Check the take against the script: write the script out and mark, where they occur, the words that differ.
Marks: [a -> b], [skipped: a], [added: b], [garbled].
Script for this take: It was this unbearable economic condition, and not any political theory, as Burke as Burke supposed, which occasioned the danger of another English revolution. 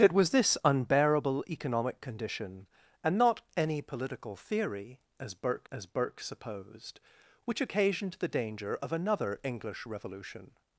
It was this unbearable economic condition, and not any political theory, as Burke as Burke supposed, which occasioned the danger of another English revolution.